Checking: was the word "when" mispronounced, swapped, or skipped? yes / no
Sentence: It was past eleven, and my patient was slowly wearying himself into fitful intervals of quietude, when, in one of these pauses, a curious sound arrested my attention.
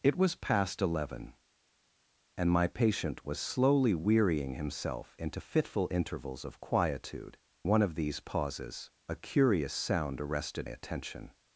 yes